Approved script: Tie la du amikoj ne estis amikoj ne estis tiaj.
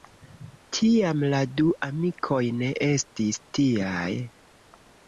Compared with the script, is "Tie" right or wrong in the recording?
wrong